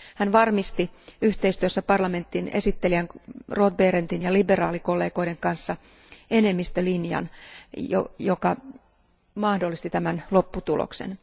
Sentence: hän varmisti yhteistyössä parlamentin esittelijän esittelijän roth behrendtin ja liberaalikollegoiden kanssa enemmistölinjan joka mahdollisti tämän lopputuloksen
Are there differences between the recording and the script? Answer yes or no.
yes